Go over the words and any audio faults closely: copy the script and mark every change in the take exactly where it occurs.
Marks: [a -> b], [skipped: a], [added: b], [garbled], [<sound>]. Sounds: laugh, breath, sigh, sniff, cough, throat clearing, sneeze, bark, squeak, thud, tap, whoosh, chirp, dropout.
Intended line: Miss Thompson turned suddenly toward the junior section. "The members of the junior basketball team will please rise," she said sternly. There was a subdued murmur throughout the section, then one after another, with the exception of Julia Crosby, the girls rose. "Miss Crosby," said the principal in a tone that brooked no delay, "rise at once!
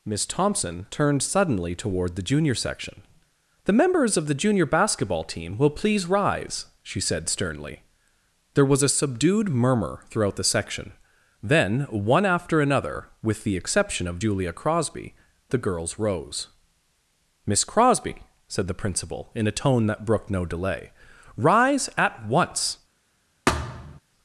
Miss Thompson turned suddenly toward the junior section. "The members of the junior basketball team will please rise," she said sternly. There was a subdued murmur throughout the section, then one after another, with the exception of Julia Crosby, the girls rose. "Miss Crosby," said the principal in a tone that brooked no delay, "rise at once! [thud]